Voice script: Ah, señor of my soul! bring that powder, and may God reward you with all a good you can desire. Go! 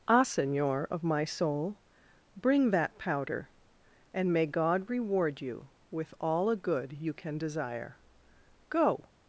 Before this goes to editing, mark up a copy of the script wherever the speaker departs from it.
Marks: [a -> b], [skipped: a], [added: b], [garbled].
Ah, señor of my soul! bring that powder, and may God reward you with all a good you can desire. Go!